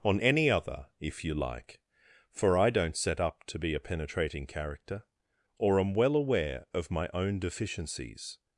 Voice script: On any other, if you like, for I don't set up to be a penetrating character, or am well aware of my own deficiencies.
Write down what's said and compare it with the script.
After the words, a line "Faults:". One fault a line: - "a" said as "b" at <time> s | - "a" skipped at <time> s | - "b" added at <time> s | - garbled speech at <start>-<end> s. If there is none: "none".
On any other, if you like, for I don't set up to be a penetrating character, or am well aware of my own deficiencies.
Faults:
none